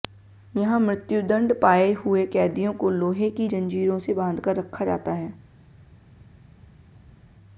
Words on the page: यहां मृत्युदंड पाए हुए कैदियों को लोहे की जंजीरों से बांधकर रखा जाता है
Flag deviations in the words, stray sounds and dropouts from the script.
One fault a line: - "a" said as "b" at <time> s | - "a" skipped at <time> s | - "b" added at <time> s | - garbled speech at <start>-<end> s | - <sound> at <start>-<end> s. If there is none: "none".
none